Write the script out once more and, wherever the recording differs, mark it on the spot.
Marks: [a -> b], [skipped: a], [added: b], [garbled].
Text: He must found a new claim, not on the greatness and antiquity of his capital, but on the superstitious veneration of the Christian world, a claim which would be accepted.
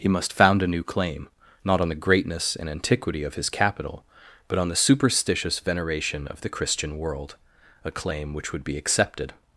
He must found a new claim, not on the greatness and antiquity of his capital, but on the superstitious veneration of the Christian world, a claim which would be accepted.